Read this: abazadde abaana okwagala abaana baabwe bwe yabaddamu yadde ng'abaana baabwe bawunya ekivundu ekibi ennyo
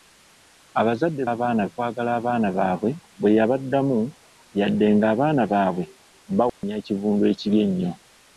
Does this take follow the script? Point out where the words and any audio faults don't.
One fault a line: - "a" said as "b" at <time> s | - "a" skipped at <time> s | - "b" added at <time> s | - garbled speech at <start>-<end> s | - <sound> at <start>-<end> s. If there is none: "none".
- dropout at 6.5-6.6 s